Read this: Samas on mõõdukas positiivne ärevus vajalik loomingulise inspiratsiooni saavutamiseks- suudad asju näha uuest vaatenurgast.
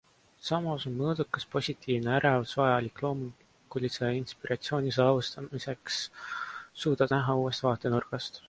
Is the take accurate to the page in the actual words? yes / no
no